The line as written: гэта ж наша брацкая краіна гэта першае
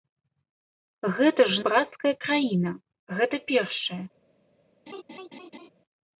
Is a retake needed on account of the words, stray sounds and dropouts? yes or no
yes